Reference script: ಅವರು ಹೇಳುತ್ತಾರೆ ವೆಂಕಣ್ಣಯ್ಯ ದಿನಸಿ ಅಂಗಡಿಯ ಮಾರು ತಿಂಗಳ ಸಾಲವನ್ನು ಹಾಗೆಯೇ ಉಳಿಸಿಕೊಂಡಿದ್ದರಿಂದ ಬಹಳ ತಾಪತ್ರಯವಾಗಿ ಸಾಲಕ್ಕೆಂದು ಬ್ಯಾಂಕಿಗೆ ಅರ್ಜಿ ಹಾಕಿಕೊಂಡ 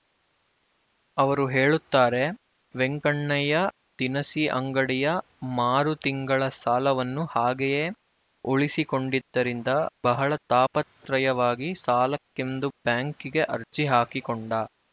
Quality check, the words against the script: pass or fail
pass